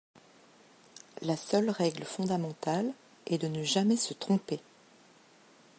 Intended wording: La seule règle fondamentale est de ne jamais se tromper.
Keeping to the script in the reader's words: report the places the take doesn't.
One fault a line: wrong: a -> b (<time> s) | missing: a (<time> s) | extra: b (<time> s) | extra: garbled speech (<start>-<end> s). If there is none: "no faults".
no faults